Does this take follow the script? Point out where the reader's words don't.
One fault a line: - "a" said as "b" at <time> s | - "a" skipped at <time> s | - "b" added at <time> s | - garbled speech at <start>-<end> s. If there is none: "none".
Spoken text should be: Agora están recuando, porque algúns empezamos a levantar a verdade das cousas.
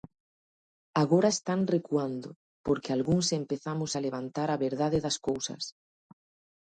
none